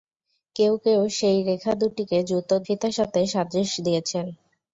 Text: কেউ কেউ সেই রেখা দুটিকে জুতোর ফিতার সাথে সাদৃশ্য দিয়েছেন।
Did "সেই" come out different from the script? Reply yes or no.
no